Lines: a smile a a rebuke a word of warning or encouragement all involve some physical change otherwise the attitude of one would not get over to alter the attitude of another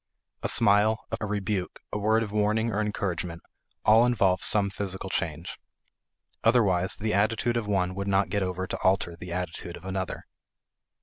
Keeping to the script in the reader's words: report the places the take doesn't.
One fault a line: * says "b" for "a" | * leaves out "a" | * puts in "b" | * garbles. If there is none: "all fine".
all fine